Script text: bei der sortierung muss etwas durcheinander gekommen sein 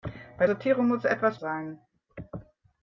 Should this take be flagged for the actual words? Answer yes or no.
yes